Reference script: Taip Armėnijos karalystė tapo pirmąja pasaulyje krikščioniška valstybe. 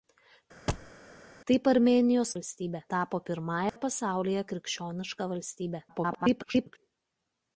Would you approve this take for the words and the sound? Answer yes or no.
no